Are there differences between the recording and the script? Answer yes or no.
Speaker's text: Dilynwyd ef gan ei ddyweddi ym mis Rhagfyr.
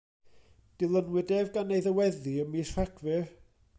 no